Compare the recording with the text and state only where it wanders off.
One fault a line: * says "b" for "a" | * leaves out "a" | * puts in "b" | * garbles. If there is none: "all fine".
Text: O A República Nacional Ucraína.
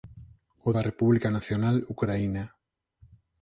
all fine